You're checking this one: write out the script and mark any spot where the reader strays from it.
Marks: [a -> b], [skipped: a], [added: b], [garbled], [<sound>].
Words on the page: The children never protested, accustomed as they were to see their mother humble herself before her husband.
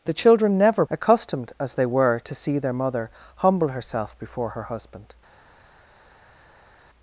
The children never [skipped: protested,] accustomed as they were to see their mother humble herself before her husband.